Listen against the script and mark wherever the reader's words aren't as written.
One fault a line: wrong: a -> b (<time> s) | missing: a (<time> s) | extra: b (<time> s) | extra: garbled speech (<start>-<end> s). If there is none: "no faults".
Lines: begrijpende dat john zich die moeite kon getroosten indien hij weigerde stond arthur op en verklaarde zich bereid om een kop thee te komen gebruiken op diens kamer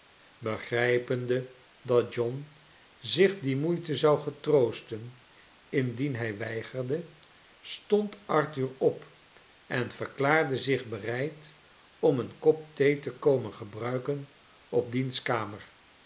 wrong: kon -> zou (4.0 s)